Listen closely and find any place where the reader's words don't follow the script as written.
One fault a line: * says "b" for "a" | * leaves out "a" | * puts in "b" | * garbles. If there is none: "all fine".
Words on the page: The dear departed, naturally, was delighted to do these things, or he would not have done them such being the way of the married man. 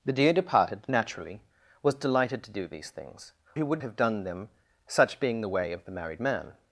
* leaves out "or"
* leaves out "not"